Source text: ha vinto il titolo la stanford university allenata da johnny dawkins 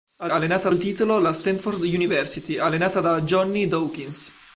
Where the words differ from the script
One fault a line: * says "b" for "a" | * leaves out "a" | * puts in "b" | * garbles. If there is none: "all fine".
* says "allenata" for "vinto"